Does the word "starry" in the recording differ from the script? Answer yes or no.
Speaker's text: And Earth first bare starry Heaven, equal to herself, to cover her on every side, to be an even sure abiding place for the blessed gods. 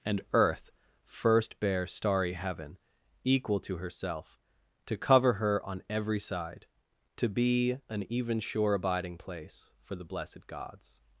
no